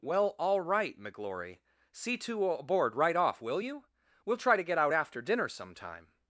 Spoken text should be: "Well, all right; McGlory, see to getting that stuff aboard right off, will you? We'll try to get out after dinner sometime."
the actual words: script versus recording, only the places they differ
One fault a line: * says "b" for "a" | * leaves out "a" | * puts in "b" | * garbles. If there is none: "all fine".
* leaves out "getting that stuff"